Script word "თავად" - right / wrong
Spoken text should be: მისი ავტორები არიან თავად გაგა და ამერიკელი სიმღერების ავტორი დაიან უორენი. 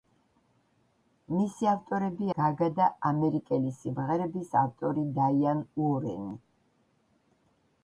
wrong